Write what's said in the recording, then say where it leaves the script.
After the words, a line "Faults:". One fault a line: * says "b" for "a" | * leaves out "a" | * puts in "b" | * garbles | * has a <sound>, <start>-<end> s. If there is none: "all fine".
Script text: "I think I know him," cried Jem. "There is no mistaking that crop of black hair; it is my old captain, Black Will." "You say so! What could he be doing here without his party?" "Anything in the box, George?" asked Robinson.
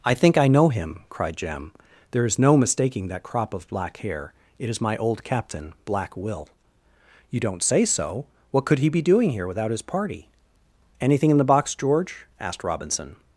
"I think I know him," cried Jem. "There is no mistaking that crop of black hair; it is my old captain, Black Will." "You don't say so! What could he be doing here without his party?" "Anything in the box, George?" asked Robinson.
Faults:
* puts in "don't"